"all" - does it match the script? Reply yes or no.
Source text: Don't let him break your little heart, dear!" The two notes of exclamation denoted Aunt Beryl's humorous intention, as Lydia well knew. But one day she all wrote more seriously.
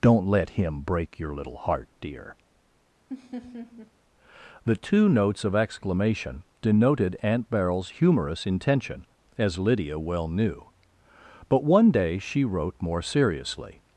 no